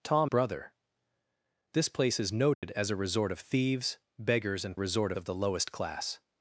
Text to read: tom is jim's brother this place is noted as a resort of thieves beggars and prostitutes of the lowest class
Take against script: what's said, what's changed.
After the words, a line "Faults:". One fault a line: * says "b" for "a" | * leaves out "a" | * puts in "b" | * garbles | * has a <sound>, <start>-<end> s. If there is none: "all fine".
tom brother this place is noted as a resort of thieves beggars and resort of the lowest class
Faults:
* leaves out "is jim's"
* has a dropout, 2.5-2.6 s
* says "resort" for "prostitutes"